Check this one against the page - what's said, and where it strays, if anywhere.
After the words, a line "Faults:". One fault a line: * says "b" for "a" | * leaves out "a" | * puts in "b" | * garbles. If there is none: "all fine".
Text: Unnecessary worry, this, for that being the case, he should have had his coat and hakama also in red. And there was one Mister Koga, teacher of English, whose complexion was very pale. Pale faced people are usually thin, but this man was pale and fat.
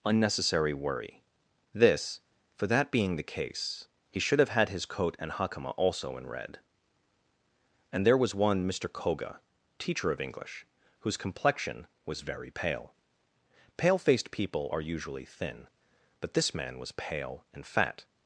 Unnecessary worry, this, for that being the case, he should have had his coat and hakama also in red. And there was one Mister Koga, teacher of English, whose complexion was very pale. Pale faced people are usually thin, but this man was pale and fat.
Faults:
all fine